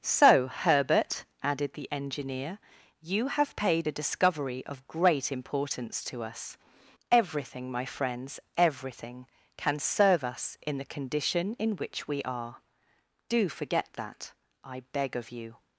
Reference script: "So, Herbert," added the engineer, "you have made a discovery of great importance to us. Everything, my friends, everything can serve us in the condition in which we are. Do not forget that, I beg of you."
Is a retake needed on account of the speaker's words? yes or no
yes